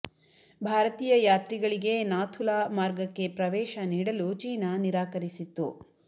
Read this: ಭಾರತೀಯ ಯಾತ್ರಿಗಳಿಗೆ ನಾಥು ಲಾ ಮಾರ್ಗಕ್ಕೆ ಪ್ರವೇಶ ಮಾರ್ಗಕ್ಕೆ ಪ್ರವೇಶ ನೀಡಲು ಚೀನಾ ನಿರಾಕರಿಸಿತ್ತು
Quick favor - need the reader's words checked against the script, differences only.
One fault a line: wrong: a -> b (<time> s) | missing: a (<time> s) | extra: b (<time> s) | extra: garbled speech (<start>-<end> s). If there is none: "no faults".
missing: ಮಾರ್ಗಕ್ಕೆ ಪ್ರವೇಶ (3.8 s)